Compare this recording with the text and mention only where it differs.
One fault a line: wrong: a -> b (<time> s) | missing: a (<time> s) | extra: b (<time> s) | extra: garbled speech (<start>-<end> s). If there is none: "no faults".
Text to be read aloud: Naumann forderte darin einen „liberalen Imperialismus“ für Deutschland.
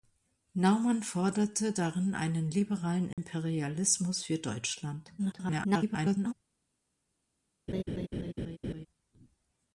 extra: garbled speech (5.2-6.3 s)